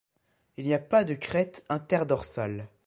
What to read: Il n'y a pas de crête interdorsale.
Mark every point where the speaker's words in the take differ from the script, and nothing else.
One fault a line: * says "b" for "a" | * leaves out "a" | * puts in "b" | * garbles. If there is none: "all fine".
all fine